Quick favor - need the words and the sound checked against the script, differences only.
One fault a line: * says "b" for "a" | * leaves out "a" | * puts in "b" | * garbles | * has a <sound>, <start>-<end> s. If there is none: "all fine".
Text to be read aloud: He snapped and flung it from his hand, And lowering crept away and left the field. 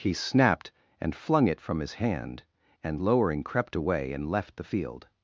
all fine